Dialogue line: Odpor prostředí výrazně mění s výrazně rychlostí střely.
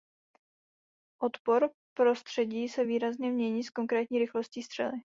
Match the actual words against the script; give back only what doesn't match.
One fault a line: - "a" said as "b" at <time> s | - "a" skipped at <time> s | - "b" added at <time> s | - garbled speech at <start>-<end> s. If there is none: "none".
- "se" added at 2.7 s
- "výrazně" said as "konkrétní" at 3.7 s